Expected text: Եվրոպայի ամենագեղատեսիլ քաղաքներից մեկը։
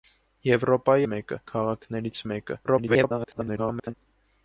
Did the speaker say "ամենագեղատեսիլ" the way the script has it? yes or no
no